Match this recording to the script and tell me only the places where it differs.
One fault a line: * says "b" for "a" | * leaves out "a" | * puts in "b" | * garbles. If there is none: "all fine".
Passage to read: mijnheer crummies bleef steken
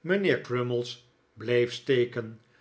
all fine